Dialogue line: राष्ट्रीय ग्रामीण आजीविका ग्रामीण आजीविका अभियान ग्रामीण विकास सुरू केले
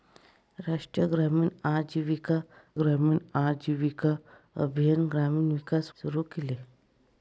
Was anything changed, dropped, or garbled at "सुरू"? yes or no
no